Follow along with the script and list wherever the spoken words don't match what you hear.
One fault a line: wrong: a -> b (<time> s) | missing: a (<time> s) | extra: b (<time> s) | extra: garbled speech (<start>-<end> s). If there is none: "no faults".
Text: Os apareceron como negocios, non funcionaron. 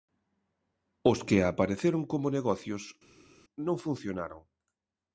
extra: que (1.3 s)